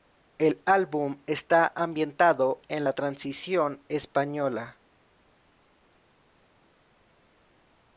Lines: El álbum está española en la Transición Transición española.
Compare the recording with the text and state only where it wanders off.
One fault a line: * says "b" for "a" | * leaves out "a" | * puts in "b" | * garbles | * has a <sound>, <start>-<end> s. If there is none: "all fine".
* says "ambientado" for "española"
* leaves out "Transición"